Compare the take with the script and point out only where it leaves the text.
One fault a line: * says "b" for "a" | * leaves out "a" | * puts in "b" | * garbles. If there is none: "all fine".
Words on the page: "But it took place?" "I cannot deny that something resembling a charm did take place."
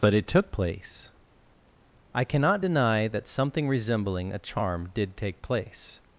all fine